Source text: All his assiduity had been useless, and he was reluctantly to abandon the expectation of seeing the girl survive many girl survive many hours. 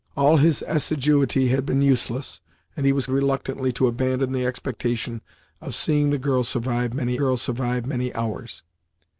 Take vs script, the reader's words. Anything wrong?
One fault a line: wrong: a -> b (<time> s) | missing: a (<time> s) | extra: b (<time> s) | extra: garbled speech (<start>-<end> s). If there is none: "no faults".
no faults